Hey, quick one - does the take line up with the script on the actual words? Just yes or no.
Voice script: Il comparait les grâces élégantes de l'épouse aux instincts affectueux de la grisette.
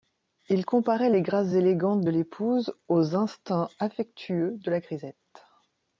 yes